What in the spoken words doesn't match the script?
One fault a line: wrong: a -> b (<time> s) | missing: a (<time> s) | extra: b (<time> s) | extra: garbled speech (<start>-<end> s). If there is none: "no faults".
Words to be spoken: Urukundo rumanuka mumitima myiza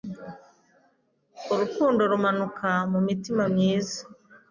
no faults